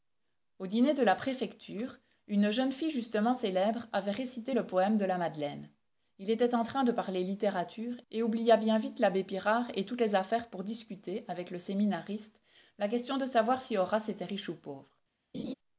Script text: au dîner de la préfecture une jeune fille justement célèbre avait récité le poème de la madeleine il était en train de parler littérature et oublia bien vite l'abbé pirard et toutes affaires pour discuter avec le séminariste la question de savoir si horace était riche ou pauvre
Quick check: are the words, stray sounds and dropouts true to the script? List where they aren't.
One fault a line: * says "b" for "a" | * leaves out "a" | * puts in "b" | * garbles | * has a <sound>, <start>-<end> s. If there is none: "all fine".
* puts in "les"
* has a laugh, 15.3-15.5 s